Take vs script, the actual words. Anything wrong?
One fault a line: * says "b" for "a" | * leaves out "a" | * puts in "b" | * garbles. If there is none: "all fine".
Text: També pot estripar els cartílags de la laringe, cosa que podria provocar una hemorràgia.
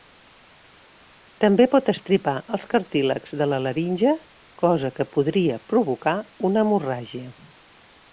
all fine